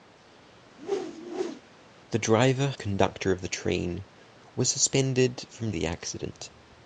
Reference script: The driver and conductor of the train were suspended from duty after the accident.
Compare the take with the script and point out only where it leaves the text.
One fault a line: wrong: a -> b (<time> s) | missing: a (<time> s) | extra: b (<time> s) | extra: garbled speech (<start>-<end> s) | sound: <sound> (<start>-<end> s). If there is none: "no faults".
sound: whoosh (0.8-1.6 s)
missing: and (2.7 s)
missing: duty after (5.7 s)